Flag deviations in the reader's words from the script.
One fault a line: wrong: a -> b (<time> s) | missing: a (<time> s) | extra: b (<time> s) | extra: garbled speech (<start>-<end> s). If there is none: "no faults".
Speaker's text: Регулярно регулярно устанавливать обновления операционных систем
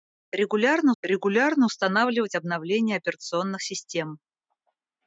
no faults